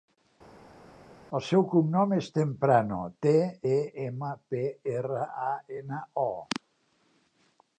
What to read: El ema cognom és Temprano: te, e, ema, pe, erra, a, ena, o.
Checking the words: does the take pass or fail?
fail